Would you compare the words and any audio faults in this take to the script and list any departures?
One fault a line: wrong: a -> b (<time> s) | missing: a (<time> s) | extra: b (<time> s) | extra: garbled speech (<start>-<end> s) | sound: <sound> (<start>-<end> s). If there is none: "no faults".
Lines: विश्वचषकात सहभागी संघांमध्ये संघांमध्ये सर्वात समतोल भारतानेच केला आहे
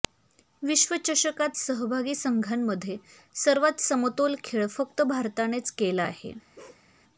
missing: संघांमध्ये (3.0 s)
extra: खेळ फक्त (4.4 s)
sound: bark (6.6-6.9 s)